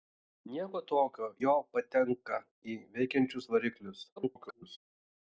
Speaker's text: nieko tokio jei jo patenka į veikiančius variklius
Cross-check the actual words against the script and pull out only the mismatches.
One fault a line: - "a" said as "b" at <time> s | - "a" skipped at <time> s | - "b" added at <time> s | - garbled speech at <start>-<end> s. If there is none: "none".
- "jei" skipped at 1.3 s
- garbled speech at 4.2-4.8 s